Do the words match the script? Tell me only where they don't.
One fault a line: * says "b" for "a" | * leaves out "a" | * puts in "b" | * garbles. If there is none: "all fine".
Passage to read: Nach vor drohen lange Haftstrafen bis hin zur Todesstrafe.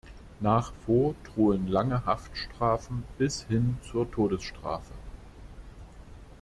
all fine